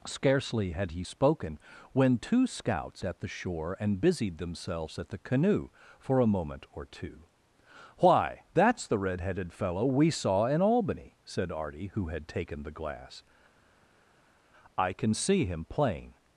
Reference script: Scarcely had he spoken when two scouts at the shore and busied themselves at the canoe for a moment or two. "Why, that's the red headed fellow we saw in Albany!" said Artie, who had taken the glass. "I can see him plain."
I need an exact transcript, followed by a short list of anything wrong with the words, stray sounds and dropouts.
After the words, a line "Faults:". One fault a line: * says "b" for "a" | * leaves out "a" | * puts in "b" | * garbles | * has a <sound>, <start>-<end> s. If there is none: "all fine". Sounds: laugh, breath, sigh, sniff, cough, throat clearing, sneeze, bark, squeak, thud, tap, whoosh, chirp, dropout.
Scarcely had he spoken when two scouts at the shore and busied themselves at the canoe for a moment or two. "Why, that's the red headed fellow we saw in Albany!" said Artie, who had taken the glass. "I can see him plain."
Faults:
all fine